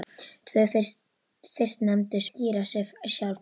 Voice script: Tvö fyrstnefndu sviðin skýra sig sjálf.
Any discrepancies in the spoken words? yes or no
yes